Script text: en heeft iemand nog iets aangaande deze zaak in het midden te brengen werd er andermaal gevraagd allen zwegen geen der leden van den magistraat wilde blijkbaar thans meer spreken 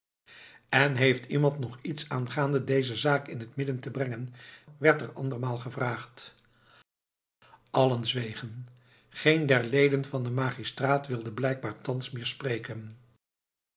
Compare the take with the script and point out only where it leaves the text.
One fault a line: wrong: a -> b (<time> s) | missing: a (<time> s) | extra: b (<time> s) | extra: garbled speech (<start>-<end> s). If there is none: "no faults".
no faults